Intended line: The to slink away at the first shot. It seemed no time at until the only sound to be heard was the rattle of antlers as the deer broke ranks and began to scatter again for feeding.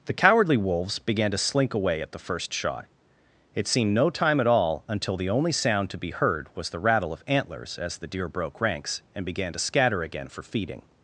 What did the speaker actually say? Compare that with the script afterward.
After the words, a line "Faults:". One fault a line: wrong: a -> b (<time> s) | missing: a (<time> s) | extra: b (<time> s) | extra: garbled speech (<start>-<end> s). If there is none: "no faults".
The cowardly wolves began to slink away at the first shot. It seemed no time at all until the only sound to be heard was the rattle of antlers as the deer broke ranks and began to scatter again for feeding.
Faults:
extra: cowardly wolves began (0.1 s)
extra: all (4.5 s)